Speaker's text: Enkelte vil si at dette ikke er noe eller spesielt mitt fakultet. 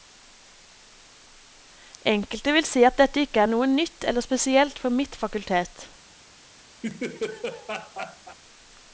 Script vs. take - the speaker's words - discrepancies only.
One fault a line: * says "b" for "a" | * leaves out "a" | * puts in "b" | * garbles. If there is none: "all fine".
* puts in "nytt"
* puts in "for"